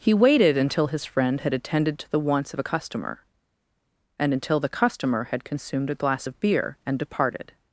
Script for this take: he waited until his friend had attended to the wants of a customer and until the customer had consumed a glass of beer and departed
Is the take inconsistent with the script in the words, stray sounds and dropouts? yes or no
no